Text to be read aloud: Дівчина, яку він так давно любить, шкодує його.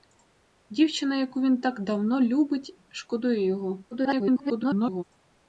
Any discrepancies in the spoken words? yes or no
yes